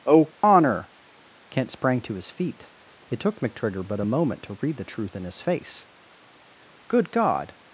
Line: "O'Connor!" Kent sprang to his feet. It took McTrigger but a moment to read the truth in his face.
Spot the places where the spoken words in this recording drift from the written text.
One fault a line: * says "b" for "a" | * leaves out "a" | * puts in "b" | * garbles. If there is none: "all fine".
* puts in "Good God"